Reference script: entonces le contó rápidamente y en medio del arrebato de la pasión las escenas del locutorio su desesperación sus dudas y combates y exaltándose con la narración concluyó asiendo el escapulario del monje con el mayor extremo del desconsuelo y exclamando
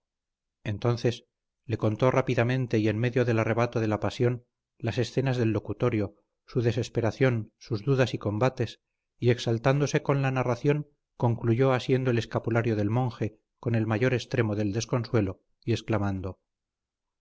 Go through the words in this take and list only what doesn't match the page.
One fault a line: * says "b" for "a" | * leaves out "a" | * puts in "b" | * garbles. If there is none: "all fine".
all fine